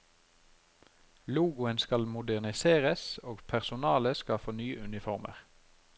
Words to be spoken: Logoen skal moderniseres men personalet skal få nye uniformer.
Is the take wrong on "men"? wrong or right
wrong